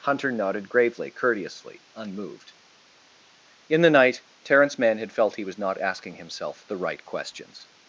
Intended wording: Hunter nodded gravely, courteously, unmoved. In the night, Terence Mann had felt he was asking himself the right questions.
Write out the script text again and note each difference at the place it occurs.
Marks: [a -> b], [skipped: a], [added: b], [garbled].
Hunter nodded gravely, courteously, unmoved. In the night, Terence Mann had felt he was [added: not] asking himself the right questions.